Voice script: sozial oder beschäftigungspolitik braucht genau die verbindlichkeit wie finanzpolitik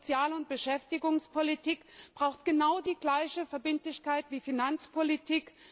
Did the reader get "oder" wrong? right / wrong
wrong